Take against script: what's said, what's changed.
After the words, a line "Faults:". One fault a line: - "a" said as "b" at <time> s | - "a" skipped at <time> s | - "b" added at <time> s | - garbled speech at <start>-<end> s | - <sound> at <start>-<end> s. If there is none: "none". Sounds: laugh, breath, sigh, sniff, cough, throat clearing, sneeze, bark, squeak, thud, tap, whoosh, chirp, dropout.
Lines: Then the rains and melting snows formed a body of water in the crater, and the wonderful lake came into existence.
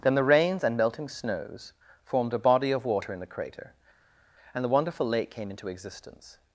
Then the rains and melting snows formed a body of water in the crater, and the wonderful lake came into existence.
Faults:
none